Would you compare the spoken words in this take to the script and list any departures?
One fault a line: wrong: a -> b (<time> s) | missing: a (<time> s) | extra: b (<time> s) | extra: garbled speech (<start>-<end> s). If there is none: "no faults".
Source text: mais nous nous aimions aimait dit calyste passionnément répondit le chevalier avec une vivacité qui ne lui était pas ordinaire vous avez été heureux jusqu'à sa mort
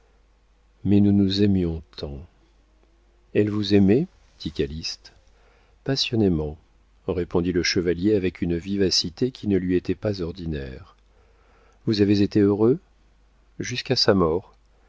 extra: tant elle vous (1.9 s)